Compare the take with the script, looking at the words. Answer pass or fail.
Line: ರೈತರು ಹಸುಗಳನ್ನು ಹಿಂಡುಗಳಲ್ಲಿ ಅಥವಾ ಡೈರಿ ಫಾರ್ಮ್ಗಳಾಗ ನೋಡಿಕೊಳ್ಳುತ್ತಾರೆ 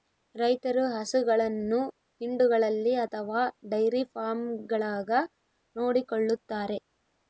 pass